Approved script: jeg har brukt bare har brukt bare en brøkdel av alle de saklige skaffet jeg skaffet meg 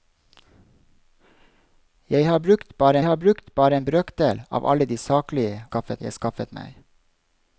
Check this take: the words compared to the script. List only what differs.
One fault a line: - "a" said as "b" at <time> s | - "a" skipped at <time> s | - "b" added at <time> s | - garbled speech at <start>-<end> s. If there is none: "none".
none